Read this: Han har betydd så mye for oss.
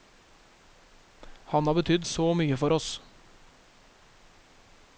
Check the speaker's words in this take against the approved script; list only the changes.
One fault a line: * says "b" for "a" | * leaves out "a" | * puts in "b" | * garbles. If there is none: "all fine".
all fine